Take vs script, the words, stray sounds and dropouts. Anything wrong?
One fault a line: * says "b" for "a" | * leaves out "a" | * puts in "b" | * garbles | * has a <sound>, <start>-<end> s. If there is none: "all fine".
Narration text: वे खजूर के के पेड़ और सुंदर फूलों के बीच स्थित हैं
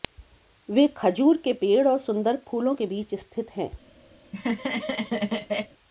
* leaves out "के"
* has a laugh, 4.2-5.7 s